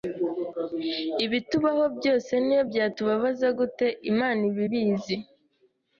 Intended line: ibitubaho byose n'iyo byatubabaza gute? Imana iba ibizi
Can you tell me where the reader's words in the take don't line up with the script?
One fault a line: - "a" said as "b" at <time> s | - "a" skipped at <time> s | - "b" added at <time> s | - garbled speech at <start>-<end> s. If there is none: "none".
none